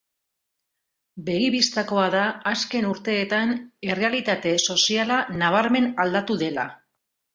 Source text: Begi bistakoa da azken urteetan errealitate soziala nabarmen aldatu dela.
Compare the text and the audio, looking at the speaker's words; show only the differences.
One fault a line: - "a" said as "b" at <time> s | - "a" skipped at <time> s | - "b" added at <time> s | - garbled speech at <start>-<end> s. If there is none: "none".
none